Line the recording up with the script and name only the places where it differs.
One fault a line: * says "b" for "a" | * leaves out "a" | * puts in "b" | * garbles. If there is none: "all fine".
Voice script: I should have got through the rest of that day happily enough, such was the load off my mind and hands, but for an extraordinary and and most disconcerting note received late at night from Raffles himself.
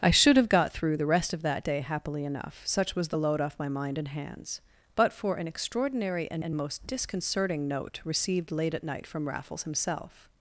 all fine